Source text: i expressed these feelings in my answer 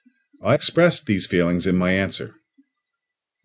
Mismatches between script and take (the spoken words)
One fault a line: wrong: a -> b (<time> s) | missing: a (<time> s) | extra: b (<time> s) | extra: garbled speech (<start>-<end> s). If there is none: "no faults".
no faults